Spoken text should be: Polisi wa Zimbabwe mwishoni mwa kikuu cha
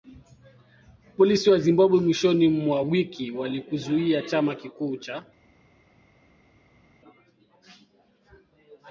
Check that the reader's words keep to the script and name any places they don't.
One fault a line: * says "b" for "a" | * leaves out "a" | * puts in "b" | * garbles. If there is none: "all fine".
* puts in "wiki walikizuia chama"